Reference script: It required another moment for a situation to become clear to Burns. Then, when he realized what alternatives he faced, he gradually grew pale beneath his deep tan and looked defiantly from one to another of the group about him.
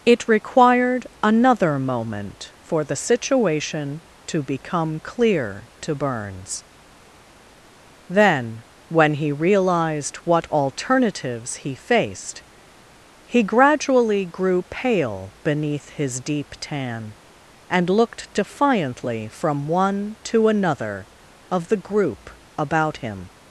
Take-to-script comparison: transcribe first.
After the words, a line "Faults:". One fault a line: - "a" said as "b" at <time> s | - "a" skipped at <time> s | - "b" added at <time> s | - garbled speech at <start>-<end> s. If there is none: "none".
It required another moment for the situation to become clear to Burns. Then, when he realized what alternatives he faced, he gradually grew pale beneath his deep tan and looked defiantly from one to another of the group about him.
Faults:
- "a" said as "the" at 2.8 s